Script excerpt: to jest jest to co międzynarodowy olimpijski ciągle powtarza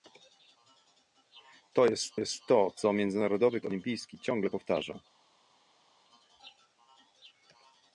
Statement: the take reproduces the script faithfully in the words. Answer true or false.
true